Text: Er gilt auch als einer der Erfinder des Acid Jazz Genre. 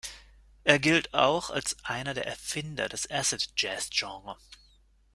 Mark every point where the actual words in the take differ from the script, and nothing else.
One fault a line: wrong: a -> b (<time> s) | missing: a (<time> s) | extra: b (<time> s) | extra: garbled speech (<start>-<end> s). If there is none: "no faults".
no faults